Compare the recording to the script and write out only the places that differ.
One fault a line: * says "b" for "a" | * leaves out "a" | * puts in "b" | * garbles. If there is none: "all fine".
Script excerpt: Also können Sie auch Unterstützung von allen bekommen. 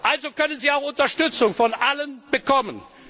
all fine